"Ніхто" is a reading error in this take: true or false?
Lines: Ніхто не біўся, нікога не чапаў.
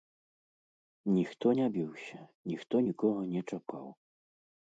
false